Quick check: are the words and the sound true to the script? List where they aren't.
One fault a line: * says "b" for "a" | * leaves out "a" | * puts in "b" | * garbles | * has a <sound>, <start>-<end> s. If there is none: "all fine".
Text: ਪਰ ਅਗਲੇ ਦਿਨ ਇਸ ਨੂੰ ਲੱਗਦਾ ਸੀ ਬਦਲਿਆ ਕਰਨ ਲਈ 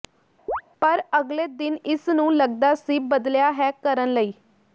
* has a chirp, 0.5-0.6 s
* puts in "ਹੈ"